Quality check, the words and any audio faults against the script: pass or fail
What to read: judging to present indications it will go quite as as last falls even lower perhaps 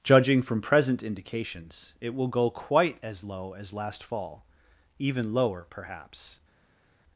fail